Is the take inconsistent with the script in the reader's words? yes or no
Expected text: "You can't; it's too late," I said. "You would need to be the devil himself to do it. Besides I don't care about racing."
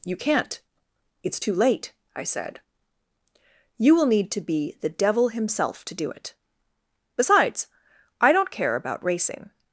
yes